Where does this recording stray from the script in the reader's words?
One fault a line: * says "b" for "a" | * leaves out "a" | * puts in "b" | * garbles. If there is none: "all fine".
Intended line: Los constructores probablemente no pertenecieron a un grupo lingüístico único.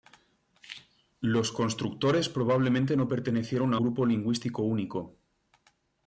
* leaves out "un"